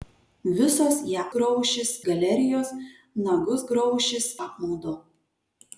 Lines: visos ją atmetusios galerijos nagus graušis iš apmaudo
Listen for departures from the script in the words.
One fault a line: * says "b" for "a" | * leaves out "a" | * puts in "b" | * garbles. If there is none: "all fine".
* says "graušis" for "atmetusios"
* leaves out "iš"